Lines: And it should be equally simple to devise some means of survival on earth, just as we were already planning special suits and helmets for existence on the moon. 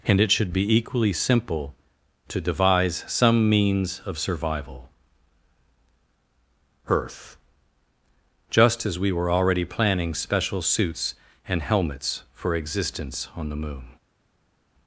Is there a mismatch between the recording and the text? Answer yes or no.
yes